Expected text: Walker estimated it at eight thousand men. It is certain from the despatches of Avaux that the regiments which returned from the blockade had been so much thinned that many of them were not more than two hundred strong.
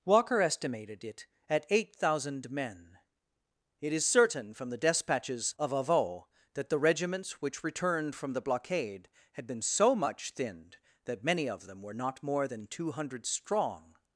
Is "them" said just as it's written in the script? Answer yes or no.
yes